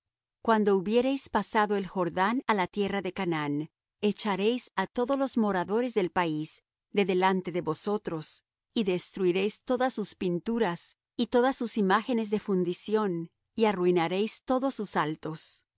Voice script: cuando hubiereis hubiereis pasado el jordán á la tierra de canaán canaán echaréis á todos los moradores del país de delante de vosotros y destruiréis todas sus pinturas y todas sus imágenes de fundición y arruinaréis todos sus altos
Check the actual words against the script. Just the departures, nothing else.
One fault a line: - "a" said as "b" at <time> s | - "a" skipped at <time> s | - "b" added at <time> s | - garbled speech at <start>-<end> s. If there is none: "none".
- "hubiereis" skipped at 1.3 s
- "canaán" skipped at 3.7 s